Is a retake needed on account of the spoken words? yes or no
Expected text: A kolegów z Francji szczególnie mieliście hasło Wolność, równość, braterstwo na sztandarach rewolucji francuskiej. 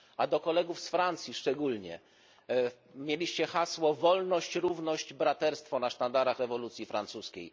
yes